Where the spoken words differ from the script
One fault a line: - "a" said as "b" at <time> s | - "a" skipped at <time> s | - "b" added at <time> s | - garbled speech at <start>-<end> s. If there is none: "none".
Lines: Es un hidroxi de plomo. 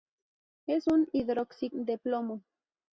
none